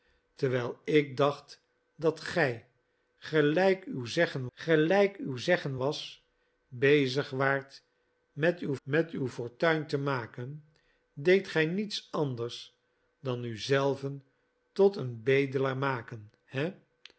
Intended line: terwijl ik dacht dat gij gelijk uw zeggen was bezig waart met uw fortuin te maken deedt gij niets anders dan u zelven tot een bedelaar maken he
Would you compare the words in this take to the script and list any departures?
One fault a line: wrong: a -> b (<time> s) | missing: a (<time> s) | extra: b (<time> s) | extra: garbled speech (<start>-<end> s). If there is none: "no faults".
extra: gelijk uw zeggen (4.5 s)
extra: met uw (8.8 s)